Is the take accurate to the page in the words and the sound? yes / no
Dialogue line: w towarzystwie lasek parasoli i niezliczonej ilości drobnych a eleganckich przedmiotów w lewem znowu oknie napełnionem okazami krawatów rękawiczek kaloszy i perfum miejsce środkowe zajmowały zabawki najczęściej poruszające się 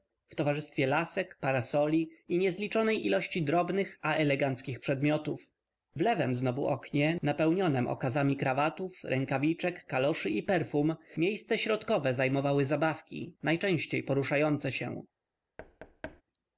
no